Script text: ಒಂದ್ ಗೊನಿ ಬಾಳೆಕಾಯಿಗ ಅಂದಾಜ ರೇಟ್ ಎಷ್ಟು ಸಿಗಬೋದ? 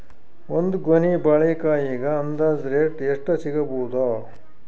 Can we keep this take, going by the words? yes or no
yes